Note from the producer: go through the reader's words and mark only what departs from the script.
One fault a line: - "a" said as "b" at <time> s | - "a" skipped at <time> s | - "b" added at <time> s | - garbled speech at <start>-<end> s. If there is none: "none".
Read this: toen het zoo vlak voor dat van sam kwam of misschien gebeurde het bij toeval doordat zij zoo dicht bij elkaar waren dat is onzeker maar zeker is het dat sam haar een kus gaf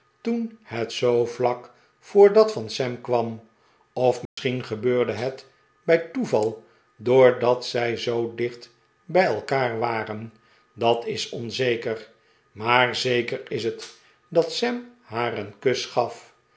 none